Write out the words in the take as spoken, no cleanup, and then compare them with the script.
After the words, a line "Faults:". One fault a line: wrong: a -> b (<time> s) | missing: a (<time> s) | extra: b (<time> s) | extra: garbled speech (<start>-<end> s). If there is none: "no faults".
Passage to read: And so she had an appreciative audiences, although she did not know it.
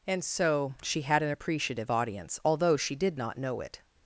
And so she had an appreciative audience, although she did not know it.
Faults:
wrong: audiences -> audience (1.9 s)